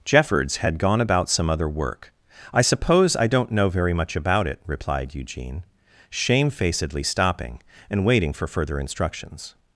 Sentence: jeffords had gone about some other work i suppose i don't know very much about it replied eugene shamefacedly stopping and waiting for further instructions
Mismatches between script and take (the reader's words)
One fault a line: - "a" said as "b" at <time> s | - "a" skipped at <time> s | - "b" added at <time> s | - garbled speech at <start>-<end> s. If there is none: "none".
none